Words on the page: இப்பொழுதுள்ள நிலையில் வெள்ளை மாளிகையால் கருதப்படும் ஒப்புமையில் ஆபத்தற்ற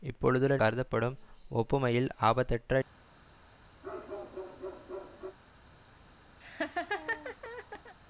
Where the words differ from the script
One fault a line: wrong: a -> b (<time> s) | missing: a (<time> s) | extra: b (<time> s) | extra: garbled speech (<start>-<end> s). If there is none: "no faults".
missing: நிலையில் வெள்ளை மாளிகையால் (0.6 s)